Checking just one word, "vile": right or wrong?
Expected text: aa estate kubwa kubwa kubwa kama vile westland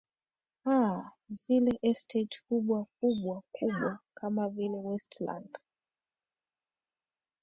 right